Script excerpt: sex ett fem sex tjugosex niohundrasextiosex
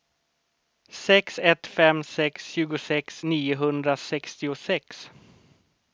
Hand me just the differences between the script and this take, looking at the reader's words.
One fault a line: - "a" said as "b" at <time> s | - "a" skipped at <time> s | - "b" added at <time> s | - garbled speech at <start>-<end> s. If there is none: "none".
none